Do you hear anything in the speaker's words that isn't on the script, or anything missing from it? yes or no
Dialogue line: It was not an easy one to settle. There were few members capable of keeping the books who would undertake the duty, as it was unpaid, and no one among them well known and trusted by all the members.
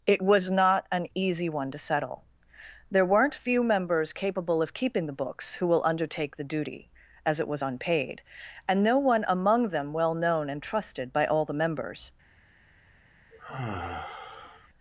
yes